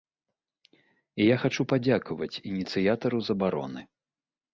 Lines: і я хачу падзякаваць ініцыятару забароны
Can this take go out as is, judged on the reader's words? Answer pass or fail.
pass